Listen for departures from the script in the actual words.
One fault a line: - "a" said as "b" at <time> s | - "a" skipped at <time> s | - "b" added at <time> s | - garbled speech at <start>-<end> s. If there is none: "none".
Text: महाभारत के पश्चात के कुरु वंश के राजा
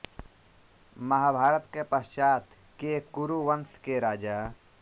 none